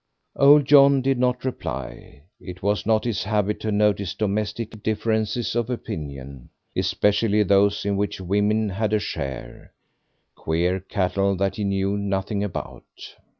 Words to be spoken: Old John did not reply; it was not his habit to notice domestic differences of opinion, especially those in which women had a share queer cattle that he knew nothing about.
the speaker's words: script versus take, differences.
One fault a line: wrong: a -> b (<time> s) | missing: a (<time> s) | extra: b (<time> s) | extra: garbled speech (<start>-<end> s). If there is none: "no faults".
no faults